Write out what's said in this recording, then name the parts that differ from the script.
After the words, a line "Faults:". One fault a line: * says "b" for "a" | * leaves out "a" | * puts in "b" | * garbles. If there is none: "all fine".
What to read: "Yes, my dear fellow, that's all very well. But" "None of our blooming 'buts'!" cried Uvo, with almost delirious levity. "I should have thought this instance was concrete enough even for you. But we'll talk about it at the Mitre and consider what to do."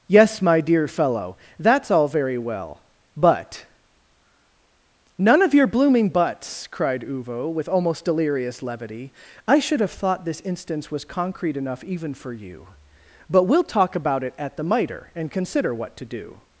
"Yes, my dear fellow, that's all very well. But" "None of your blooming 'buts'!" cried Uvo, with almost delirious levity. "I should have thought this instance was concrete enough even for you. But we'll talk about it at the Mitre and consider what to do."
Faults:
* says "your" for "our"